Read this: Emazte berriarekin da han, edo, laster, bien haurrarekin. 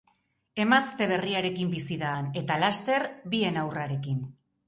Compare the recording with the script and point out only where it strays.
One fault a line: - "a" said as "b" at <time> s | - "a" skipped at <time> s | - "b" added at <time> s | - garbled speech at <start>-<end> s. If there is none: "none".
- "bizi" added at 1.7 s
- "edo" said as "eta" at 2.4 s